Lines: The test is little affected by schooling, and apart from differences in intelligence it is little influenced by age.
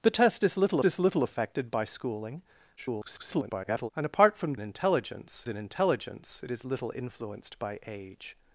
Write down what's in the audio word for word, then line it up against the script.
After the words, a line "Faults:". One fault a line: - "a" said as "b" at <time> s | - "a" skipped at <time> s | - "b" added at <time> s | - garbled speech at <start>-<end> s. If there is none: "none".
The test is little is little affected by schooling, [garbled] and apart from intelligence in intelligence it is little influenced by age.
Faults:
- "is little" added at 0.8 s
- garbled speech at 2.8-3.9 s
- "differences" said as "intelligence" at 4.6 s